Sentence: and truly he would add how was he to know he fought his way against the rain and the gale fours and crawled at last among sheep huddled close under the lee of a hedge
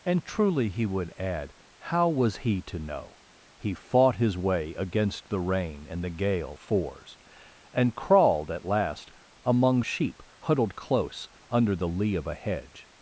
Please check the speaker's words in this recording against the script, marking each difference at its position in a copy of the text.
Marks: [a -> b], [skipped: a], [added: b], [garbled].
and truly he would add how was he to know he fought his way against the rain and the gale fours and crawled at last among sheep huddled close under the lee of a hedge